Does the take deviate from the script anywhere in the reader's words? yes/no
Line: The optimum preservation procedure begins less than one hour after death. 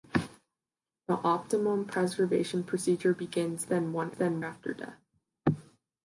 yes